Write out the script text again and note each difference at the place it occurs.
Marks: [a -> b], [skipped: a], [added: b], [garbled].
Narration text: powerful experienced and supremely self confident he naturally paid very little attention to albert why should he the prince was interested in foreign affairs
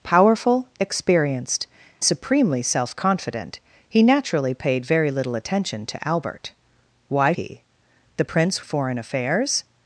powerful experienced [skipped: and] supremely self confident he naturally paid very little attention to albert why [skipped: should] he the prince [skipped: was interested in] foreign affairs